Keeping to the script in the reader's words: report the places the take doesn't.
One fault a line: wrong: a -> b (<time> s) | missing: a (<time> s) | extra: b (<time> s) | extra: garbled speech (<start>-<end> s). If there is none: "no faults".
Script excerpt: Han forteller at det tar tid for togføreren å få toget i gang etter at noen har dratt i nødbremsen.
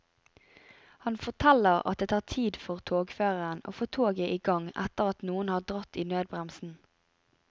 no faults